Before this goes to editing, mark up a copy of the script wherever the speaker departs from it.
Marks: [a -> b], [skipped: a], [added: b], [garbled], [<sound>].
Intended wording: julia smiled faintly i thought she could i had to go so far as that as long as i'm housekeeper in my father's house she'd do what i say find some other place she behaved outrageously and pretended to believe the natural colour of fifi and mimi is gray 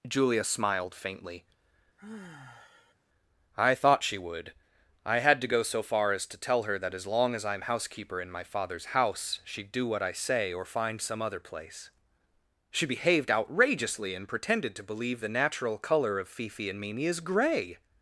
julia smiled faintly [sigh] i thought she [could -> would] i had to go so far as [added: to tell her] that as long as i'm housekeeper in my father's house she'd do what i say [added: or] find some other place she behaved outrageously and pretended to believe the natural colour of fifi and mimi is gray